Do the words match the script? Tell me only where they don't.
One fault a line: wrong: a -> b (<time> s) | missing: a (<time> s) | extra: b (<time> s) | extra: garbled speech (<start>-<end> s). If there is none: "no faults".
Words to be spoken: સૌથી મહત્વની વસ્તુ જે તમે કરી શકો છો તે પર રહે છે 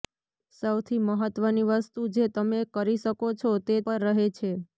no faults